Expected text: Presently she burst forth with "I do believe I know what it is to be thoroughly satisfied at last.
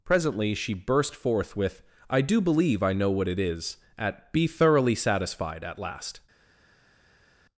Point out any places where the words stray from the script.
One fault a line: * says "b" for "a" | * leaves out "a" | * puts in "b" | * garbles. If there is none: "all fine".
* says "at" for "to"